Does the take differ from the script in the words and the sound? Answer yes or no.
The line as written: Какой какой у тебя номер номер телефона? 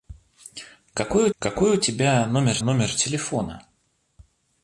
no